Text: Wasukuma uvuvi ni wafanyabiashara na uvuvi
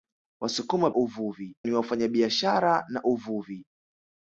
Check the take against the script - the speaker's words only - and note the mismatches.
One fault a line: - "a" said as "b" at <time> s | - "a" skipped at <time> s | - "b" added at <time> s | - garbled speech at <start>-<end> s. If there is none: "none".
none